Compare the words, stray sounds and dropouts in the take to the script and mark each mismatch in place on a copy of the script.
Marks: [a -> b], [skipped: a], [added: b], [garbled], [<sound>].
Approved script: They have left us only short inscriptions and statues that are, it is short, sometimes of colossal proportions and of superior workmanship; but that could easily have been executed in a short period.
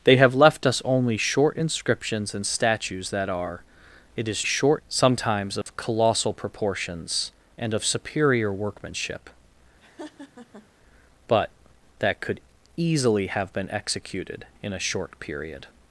They have left us only short inscriptions and statues that are, it is short, sometimes of [dropout] colossal proportions and of superior workmanship; [laugh] but that could easily have been executed in a short period.